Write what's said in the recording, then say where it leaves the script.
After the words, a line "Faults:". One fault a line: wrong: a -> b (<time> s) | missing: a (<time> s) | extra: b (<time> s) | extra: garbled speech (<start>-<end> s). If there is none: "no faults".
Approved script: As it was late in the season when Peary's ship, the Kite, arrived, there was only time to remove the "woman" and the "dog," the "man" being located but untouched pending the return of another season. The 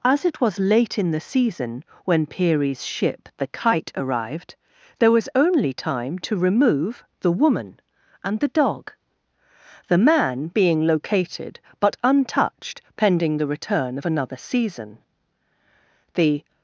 As it was late in the season when Peary's ship, the Kite, arrived, there was only time to remove the "woman" and the "dog," the "man" being located but untouched pending the return of another season. The
Faults:
no faults